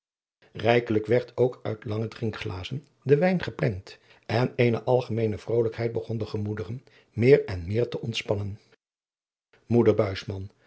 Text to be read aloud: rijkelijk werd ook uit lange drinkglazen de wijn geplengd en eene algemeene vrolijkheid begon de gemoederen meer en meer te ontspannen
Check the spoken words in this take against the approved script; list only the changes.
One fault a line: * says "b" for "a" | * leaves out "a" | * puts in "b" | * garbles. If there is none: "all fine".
all fine